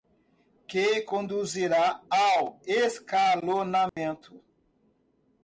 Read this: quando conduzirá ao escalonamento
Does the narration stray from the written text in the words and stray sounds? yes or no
yes